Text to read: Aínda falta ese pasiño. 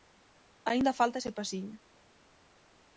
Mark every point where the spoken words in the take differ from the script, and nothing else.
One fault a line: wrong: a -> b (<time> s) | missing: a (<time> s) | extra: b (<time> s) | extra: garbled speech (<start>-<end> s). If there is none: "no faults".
no faults